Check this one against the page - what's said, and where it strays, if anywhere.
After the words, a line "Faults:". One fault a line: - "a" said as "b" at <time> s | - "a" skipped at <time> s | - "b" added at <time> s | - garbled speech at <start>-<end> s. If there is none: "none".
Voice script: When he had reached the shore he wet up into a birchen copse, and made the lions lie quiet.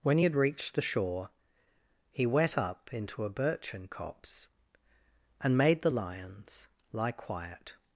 When he had reached the shore he wet up into a birchen copse, and made the lions lie quiet.
Faults:
none